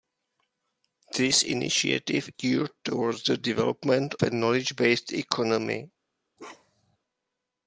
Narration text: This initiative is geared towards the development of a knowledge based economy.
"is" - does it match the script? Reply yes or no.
no